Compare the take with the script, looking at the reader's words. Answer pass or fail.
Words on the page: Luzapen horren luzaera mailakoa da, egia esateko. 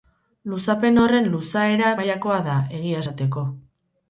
pass